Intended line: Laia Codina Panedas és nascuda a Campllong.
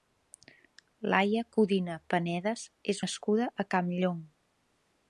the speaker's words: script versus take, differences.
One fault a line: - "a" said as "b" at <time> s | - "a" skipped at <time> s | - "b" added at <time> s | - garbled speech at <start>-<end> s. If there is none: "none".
none